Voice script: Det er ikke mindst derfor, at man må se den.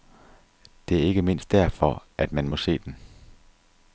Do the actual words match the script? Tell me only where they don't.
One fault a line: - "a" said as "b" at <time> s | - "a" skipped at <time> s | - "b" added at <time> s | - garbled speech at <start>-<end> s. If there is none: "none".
none